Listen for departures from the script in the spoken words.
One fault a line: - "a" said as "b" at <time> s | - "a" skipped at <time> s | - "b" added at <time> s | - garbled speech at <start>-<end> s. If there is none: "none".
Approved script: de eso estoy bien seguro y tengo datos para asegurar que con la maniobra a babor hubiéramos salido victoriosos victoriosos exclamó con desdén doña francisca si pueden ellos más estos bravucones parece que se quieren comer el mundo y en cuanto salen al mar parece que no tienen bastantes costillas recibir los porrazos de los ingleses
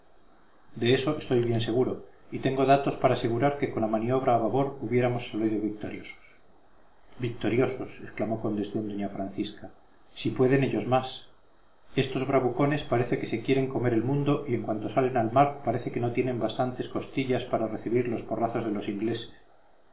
- "para" added at 17.5 s